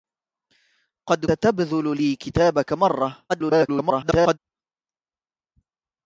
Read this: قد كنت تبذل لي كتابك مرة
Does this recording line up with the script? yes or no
no